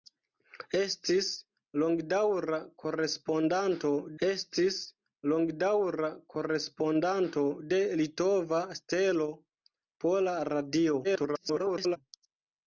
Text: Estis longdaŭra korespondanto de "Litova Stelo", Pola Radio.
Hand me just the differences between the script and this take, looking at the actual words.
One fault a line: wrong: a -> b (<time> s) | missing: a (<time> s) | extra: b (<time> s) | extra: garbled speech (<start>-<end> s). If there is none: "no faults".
extra: estis longdaŭra korespondanto (4.3 s)
extra: garbled speech (11.0-12.0 s)